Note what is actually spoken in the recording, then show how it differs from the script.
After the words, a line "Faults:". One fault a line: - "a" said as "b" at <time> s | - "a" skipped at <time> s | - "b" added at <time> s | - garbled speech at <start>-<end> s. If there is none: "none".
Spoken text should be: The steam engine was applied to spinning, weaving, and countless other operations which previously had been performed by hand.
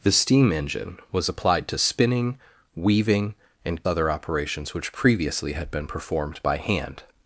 The steam engine was applied to spinning, weaving, and other operations which previously had been performed by hand.
Faults:
- "countless" skipped at 3.9 s